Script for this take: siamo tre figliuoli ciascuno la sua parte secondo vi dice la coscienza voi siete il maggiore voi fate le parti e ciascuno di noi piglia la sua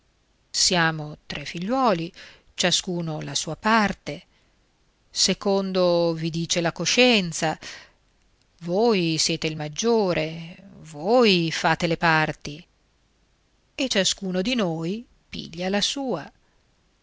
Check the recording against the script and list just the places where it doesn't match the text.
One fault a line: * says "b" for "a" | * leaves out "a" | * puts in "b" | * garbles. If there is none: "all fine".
all fine